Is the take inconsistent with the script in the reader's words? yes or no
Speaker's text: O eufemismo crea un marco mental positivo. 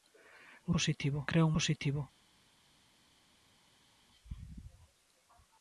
yes